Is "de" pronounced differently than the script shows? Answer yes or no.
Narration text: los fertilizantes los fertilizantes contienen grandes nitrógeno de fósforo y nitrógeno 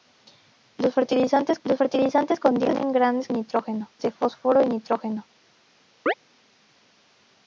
no